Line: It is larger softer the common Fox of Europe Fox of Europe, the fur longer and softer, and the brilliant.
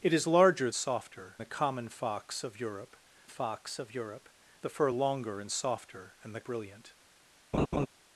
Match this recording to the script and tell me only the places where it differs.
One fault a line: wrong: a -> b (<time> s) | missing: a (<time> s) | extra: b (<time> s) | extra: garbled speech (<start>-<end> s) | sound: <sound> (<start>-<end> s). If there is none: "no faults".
sound: laugh (7.5-7.9 s)